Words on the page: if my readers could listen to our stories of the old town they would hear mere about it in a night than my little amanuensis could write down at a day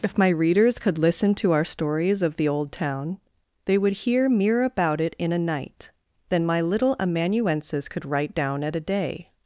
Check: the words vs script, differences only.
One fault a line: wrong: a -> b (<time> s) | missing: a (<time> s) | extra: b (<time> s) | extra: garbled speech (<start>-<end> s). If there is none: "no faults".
no faults